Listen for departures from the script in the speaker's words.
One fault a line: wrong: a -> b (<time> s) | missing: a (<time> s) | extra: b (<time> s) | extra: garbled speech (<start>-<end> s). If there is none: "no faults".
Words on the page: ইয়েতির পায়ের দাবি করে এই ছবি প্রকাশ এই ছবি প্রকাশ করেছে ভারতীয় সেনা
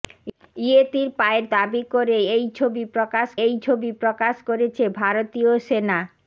no faults